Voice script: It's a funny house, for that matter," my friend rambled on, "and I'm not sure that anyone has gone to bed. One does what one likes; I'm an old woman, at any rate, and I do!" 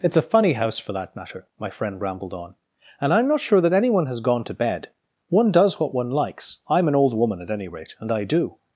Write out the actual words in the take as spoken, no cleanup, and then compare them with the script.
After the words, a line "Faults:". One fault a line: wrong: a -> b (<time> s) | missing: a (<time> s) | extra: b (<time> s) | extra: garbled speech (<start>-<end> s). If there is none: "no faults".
It's a funny house, for that matter," my friend rambled on, "and I'm not sure that anyone has gone to bed. One does what one likes; I'm an old woman, at any rate, and I do!"
Faults:
no faults